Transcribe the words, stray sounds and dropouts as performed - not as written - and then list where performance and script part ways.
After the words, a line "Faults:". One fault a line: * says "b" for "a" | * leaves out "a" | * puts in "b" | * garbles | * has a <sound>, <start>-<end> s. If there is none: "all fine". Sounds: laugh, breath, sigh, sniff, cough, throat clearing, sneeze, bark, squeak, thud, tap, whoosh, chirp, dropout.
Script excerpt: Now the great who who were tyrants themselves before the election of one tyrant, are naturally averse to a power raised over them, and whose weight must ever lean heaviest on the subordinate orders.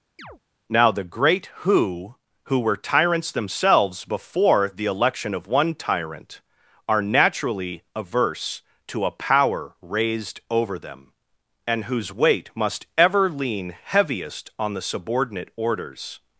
Now the great who who were tyrants themselves before the election of one tyrant, are naturally averse to a power raised over them, and whose weight must ever lean heaviest on the subordinate orders.
Faults:
* has a chirp, 0.2-0.4 s